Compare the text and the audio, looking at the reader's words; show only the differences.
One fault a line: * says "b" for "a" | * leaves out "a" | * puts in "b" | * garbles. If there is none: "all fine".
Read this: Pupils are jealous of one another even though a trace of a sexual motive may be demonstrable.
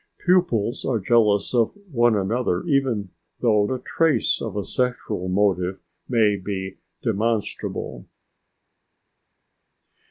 all fine